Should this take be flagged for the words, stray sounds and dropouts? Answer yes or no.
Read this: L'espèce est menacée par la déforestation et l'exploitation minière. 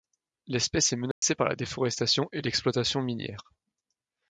yes